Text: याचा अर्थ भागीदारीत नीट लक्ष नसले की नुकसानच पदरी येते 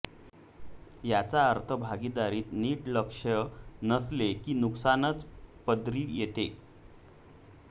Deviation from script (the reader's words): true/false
false